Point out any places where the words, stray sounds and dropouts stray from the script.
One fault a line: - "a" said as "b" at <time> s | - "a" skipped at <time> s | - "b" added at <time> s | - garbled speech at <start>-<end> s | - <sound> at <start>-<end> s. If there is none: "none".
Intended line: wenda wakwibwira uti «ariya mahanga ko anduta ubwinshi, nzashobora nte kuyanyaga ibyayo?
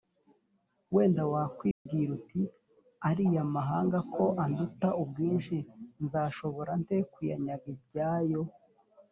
- dropout at 1.7-1.9 s